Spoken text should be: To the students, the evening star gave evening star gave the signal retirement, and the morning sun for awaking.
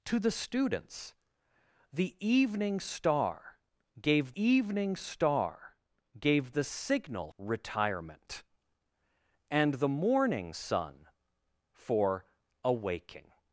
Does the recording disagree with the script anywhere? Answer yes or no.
no